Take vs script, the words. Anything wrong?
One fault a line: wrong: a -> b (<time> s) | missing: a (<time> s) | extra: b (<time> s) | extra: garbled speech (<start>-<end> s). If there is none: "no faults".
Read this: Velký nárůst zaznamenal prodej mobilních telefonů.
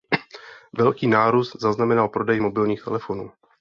no faults